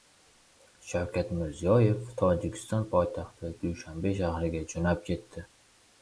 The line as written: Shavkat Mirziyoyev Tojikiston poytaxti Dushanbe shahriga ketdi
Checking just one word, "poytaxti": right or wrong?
right